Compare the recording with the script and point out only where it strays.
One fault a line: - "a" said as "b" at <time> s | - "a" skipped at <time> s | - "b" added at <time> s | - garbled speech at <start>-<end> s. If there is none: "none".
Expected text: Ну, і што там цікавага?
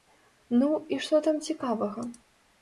none